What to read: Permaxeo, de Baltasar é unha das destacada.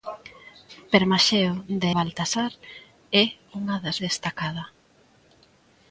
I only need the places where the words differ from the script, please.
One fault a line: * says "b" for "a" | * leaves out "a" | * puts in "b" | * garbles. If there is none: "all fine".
all fine